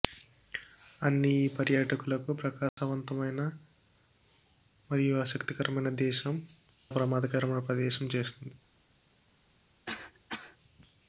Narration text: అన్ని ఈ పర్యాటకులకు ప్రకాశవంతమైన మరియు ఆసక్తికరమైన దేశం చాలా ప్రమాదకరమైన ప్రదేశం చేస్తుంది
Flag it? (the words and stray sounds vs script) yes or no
yes